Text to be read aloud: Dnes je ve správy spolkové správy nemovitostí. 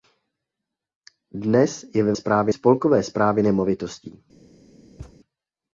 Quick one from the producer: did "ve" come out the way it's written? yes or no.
yes